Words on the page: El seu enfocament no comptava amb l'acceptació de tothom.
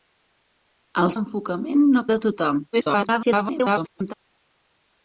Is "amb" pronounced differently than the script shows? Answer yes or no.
yes